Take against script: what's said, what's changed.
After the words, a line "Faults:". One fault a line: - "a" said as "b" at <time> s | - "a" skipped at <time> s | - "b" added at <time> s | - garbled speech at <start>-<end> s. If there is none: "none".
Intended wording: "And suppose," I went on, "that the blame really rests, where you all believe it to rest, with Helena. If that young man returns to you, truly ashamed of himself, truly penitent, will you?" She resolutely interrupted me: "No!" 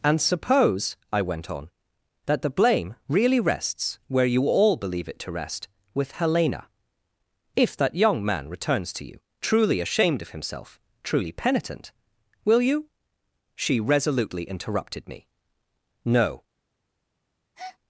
"And suppose," I went on, "that the blame really rests, where you all believe it to rest, with Helena. If that young man returns to you, truly ashamed of himself, truly penitent, will you?" She resolutely interrupted me: "No!"
Faults:
none